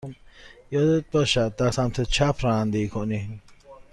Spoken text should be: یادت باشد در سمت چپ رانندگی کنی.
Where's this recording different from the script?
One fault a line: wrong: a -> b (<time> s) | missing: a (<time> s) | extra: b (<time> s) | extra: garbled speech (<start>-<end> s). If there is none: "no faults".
no faults